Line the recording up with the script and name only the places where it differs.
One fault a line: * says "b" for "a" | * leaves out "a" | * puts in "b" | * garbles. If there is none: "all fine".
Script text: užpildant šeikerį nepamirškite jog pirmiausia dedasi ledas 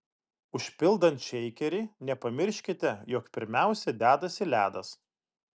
all fine